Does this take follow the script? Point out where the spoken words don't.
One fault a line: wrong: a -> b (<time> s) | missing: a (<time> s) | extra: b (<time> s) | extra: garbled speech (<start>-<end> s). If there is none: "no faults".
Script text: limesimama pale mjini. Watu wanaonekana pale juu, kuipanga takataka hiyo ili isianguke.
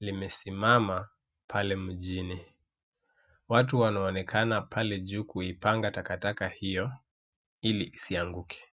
no faults